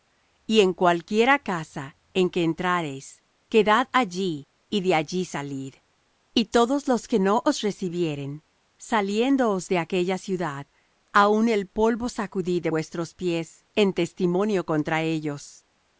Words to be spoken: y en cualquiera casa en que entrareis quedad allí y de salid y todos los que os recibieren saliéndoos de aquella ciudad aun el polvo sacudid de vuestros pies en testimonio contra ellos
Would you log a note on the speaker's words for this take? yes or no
yes